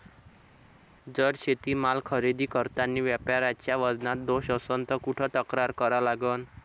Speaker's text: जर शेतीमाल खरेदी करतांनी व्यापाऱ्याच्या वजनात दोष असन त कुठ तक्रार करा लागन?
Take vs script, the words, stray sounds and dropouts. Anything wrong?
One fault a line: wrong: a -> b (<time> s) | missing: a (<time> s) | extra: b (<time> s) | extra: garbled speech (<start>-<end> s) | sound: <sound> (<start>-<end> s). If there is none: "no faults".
no faults